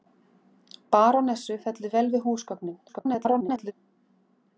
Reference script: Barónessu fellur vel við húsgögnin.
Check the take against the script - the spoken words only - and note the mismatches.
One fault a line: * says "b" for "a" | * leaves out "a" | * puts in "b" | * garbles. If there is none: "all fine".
* garbles